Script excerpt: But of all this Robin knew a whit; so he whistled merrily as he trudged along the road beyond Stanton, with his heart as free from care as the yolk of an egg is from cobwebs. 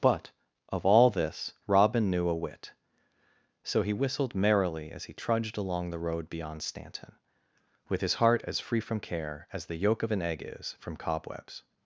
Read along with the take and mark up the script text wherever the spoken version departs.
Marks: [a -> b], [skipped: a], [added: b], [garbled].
But of all this Robin knew a whit; so he whistled merrily as he trudged along the road beyond Stanton, with his heart as free from care as the yolk of an egg is from cobwebs.